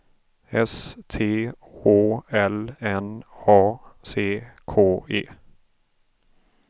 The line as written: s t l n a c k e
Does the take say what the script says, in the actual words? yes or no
no